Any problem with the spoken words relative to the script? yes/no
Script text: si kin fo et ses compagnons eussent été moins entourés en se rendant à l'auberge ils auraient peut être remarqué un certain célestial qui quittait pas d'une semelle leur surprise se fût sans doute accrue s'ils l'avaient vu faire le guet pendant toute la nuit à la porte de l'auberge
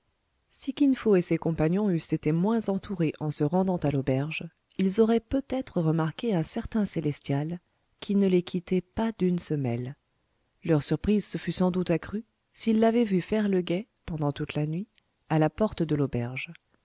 yes